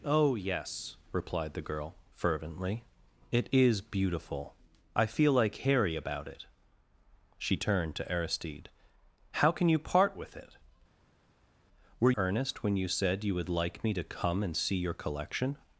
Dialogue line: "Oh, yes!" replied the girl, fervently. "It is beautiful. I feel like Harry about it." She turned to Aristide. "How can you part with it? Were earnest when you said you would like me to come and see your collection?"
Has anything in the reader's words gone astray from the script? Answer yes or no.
no